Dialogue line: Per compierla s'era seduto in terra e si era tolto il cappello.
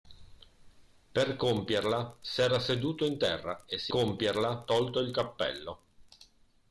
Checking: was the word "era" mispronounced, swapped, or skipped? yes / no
yes